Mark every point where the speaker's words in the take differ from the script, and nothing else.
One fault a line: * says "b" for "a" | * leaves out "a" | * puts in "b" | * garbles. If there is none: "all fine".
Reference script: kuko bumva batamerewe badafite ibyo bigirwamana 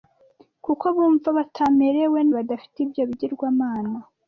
all fine